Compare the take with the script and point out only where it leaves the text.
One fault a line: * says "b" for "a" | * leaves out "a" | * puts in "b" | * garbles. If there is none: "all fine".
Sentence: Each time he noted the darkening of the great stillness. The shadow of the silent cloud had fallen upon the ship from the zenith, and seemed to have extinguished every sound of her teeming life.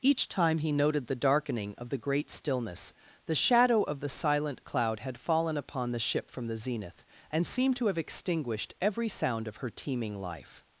all fine